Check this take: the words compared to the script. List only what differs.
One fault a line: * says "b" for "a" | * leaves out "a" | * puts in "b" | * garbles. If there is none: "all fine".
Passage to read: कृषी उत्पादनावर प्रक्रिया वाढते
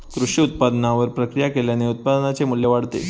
* puts in "केल्याने उत्पादनाचे मू्ल्य"